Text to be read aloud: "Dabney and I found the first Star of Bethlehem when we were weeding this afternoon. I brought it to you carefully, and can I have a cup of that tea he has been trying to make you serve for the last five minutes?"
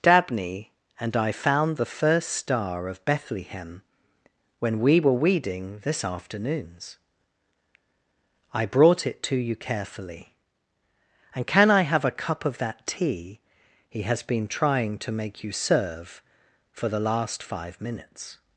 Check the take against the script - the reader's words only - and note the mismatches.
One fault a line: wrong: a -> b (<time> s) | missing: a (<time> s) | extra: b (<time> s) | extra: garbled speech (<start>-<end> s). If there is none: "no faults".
wrong: afternoon -> afternoons (6.0 s)